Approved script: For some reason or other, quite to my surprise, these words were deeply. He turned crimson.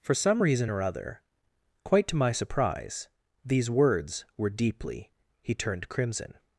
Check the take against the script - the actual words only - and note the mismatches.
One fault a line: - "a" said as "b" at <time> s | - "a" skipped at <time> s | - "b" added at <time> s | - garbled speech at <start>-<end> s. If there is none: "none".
none